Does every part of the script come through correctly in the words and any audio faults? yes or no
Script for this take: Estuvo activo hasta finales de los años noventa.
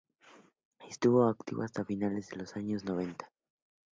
yes